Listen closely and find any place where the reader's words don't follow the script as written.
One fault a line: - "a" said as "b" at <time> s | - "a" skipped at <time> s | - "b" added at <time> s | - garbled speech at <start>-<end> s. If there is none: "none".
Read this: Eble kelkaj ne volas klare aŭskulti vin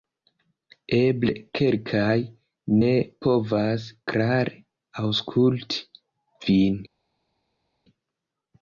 - "volas" said as "povas" at 3.3 s